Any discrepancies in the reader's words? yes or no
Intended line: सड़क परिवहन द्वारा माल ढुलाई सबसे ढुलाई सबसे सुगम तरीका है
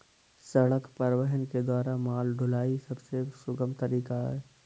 yes